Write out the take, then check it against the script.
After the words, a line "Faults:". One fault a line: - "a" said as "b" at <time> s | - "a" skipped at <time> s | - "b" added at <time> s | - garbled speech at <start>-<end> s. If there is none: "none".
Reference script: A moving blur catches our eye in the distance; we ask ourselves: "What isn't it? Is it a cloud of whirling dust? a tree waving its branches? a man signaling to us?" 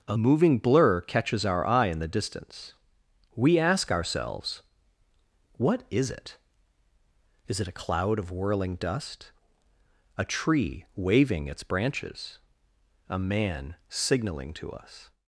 A moving blur catches our eye in the distance; we ask ourselves: "What is it? Is it a cloud of whirling dust? a tree waving its branches? a man signaling to us?"
Faults:
- "isn't" said as "is" at 5.9 s